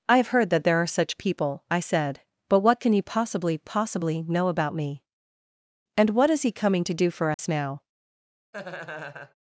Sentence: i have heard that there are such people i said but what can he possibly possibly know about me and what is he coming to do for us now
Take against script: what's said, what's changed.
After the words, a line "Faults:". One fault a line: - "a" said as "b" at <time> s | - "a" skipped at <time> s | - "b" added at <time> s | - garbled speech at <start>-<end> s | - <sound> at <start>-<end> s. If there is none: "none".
i have heard that there are such people i said but what can he possibly possibly know about me and what is he coming to do for us now
Faults:
- dropout at 7.3-7.4 s
- laugh at 8.5-9.3 s